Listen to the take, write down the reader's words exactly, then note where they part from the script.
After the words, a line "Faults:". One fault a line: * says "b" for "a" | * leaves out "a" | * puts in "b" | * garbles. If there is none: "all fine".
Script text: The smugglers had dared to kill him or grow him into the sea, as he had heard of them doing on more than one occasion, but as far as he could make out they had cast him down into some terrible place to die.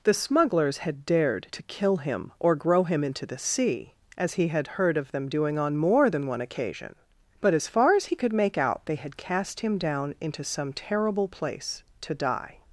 The smugglers had dared to kill him or grow him into the sea, as he had heard of them doing on more than one occasion, but as far as he could make out they had cast him down into some terrible place to die.
Faults:
all fine